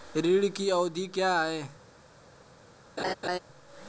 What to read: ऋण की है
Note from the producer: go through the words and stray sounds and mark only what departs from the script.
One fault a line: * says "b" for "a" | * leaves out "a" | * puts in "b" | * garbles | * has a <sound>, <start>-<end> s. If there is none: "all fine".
* puts in "अवधि क्या"
* has a laugh, 3.0-3.4 s